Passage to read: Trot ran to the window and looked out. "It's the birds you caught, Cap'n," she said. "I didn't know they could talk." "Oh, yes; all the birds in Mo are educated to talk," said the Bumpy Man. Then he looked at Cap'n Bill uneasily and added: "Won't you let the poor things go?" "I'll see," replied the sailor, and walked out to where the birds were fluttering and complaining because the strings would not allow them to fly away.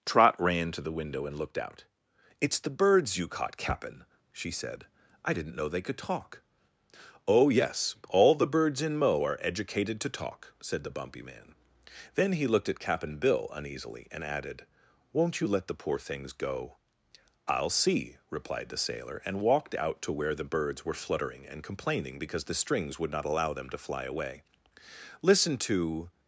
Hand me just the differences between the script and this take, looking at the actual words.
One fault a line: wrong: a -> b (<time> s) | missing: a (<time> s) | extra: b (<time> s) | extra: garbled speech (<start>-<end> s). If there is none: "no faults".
extra: Listen to (25.2 s)